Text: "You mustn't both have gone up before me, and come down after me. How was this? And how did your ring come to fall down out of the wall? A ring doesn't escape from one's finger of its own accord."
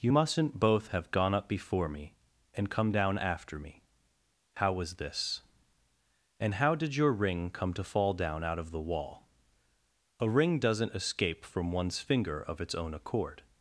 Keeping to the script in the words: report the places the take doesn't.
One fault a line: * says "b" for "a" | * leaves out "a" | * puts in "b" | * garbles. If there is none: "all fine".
all fine